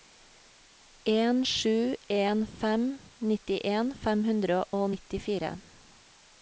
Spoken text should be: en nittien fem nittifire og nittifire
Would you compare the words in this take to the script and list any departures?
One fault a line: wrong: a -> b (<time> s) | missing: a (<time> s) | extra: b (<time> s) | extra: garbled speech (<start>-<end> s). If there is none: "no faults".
extra: sju en fem (1.4 s)
wrong: nittifire -> hundre (4.3 s)